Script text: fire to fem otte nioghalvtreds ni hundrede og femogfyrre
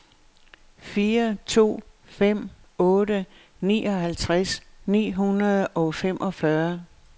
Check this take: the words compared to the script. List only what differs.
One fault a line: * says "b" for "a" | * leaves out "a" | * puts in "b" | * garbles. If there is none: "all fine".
all fine